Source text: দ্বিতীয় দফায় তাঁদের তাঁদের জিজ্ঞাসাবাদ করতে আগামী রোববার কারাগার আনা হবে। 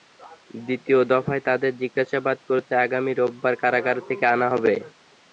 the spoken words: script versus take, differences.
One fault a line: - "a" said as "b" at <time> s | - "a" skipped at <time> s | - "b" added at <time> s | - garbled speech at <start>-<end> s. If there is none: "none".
- "তাঁদের" skipped at 1.7 s
- "থেকে" added at 4.1 s